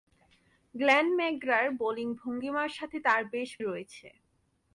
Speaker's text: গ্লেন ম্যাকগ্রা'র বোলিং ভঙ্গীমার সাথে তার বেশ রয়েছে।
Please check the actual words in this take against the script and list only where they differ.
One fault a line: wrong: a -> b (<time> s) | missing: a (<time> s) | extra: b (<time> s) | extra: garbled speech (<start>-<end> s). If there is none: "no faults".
no faults